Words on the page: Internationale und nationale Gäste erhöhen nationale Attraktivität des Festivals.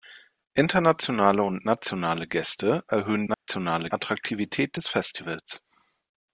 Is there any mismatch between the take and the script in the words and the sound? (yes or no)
yes